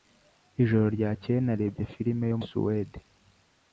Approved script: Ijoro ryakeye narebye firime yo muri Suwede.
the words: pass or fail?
fail